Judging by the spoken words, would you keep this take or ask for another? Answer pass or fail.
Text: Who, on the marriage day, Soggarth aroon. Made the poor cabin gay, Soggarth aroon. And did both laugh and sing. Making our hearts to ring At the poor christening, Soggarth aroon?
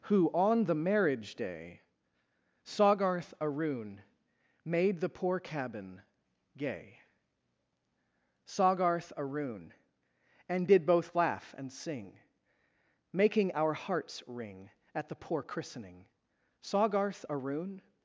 fail